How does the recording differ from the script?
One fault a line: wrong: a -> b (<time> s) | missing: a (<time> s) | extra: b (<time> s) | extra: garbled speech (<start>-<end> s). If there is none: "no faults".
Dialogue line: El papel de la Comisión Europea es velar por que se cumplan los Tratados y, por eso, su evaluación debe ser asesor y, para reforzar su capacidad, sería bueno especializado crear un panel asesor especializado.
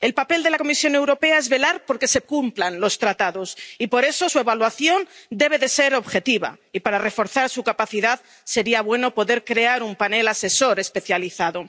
wrong: asesor -> objetiva (5.9 s)
wrong: especializado -> poder (9.1 s)